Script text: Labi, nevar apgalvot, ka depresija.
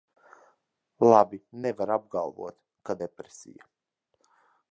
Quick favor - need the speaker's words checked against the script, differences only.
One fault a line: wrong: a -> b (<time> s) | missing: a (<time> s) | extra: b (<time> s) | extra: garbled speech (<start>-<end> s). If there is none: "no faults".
no faults